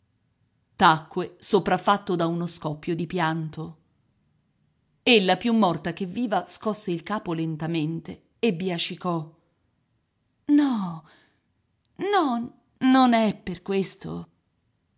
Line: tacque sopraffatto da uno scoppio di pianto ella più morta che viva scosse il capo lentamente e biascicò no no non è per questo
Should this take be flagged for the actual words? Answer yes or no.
no